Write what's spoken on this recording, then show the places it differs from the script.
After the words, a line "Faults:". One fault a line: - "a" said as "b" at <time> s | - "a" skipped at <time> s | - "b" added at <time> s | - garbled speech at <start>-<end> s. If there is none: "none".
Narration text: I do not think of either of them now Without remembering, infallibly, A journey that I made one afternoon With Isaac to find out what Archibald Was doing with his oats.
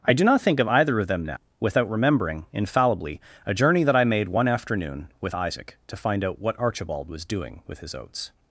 I do not think of either of them now Without remembering, infallibly, A journey that I made one afternoon With Isaac to find out what Archibald Was doing with his oats.
Faults:
none